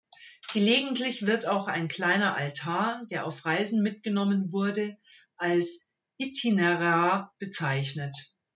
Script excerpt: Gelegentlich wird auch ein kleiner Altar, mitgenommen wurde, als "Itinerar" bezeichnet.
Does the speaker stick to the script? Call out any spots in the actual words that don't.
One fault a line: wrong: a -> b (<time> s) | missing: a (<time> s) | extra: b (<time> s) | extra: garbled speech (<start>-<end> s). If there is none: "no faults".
extra: der auf Reisen (3.1 s)